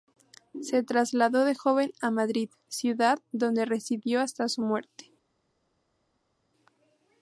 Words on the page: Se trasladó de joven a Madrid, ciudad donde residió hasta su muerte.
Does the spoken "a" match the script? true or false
true